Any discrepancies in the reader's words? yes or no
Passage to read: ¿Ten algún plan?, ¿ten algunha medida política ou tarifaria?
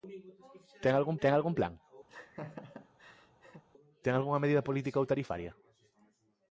yes